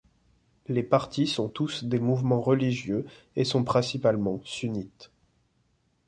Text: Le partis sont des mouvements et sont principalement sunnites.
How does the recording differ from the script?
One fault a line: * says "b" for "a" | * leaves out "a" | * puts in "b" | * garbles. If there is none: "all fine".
* says "Les" for "Le"
* puts in "tous"
* puts in "religieux"